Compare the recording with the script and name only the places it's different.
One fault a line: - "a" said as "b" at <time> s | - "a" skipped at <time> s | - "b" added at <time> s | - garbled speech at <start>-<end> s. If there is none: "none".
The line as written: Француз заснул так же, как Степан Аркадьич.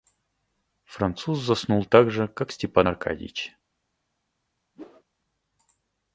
none